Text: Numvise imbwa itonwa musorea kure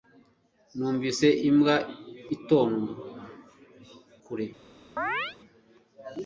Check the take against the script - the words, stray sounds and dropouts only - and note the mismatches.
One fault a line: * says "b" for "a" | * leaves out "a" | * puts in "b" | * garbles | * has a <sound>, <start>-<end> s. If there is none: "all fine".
* leaves out "musorea"
* has a chirp, 5.0-5.4 s